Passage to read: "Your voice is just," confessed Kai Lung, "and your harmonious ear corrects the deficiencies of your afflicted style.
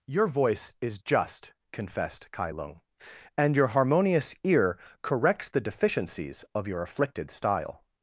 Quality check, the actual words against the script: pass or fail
pass